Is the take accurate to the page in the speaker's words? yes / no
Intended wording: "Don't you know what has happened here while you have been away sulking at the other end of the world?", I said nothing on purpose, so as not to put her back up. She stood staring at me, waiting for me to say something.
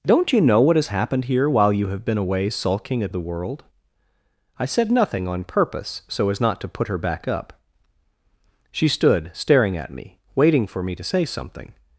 no